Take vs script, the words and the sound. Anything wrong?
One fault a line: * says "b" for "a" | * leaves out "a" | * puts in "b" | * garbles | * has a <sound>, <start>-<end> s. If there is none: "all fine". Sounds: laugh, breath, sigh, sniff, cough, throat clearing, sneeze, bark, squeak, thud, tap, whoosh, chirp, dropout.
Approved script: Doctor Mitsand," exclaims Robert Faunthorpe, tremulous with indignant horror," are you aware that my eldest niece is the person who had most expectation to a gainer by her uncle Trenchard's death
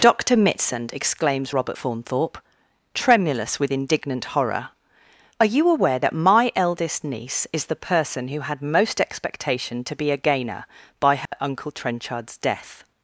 * puts in "be"
* has a dropout, 11.3-11.3 s